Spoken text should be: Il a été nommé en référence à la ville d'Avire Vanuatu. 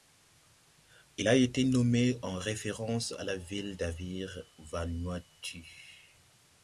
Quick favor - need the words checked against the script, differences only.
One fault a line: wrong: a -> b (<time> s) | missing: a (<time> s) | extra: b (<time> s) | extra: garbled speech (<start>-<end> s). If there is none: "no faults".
no faults